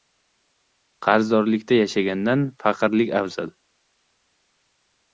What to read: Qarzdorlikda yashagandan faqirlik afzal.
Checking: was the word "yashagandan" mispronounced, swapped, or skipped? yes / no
no